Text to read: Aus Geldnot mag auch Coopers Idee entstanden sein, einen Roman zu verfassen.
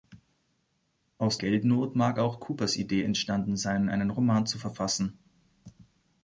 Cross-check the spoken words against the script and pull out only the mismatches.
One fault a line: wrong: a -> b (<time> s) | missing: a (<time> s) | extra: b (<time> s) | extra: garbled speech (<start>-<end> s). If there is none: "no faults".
no faults